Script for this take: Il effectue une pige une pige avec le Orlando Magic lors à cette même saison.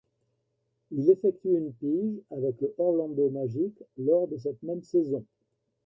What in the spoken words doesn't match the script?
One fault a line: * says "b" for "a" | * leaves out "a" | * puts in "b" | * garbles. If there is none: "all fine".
* leaves out "une pige"
* says "de" for "à"